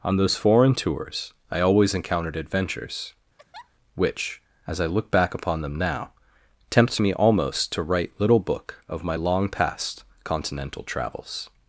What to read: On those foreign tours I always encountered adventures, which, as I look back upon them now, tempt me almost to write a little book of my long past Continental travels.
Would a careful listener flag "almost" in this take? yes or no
no